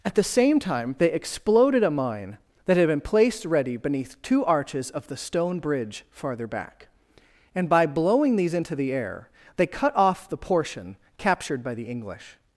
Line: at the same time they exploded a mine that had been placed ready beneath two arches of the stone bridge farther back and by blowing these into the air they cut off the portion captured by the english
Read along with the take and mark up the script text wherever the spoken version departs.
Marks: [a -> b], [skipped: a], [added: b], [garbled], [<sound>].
at the same time they exploded a mine that had been placed ready beneath two arches of the stone bridge farther back and by blowing these into the air they cut off the portion captured by the english